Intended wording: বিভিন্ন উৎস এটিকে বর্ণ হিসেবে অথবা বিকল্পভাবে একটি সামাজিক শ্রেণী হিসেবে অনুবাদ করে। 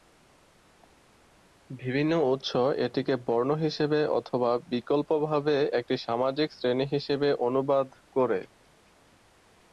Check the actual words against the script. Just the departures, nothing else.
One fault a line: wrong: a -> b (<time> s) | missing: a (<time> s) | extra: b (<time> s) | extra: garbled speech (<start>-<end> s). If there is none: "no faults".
no faults